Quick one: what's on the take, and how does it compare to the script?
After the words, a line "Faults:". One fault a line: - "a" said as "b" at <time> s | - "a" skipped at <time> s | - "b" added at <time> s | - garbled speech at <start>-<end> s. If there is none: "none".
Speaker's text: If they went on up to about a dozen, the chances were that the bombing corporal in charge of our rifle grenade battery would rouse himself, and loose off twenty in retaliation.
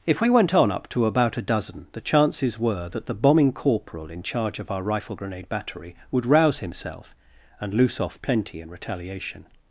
If we went on up to about a dozen, the chances were that the bombing corporal in charge of our rifle grenade battery would rouse himself, and loose off plenty in retaliation.
Faults:
- "they" said as "we" at 0.2 s
- "twenty" said as "plenty" at 8.2 s